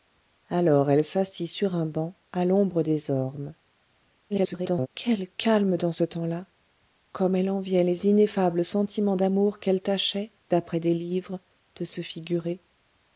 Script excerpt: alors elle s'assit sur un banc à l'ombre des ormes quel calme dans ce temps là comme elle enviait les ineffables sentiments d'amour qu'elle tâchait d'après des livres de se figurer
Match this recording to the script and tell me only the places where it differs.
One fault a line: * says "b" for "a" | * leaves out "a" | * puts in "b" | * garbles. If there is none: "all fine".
* garbles